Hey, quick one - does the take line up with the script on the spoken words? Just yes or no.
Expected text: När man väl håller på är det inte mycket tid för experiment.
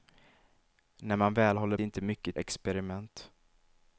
no